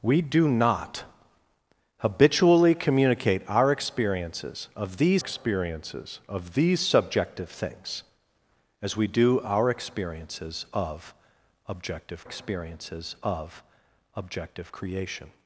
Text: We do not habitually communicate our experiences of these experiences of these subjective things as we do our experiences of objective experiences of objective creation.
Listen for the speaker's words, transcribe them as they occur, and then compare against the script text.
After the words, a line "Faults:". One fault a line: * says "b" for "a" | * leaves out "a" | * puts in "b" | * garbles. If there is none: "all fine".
We do not habitually communicate our experiences of these experiences of these subjective things as we do our experiences of objective experiences of objective creation.
Faults:
all fine